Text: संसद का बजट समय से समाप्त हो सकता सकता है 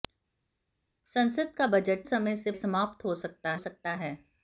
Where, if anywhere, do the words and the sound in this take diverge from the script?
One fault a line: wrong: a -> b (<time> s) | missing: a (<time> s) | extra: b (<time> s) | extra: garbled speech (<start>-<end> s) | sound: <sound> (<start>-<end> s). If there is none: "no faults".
no faults